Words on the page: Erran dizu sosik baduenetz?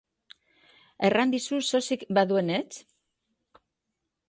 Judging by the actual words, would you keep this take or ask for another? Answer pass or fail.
pass